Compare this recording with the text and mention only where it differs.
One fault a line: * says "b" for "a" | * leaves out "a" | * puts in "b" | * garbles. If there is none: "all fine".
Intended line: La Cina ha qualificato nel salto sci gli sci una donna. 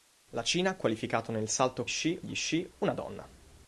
all fine